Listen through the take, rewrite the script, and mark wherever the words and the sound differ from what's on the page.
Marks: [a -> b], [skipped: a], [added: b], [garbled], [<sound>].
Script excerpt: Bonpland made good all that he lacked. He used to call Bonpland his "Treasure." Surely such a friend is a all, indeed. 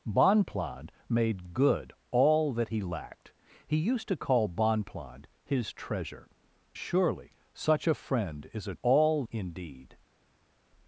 Bonpland made good all that he lacked. He used to call Bonpland his "Treasure." Surely such a friend is a all, indeed.